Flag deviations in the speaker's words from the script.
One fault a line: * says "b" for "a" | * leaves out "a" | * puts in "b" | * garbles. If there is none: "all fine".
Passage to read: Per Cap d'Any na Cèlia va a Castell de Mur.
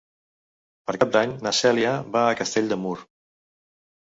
all fine